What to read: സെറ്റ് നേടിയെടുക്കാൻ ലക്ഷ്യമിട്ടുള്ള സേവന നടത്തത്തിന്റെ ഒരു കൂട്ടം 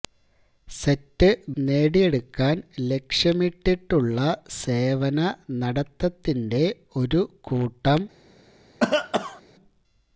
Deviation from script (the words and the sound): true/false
true